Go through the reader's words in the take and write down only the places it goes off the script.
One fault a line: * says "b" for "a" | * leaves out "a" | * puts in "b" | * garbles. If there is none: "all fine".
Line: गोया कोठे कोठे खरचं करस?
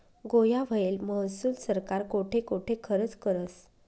* puts in "व्हयेल महसूल सरकार"